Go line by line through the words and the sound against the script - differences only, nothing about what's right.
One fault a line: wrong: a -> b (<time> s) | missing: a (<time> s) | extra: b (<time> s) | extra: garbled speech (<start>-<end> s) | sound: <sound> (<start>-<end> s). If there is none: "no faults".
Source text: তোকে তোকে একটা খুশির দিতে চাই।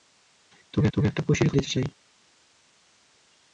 no faults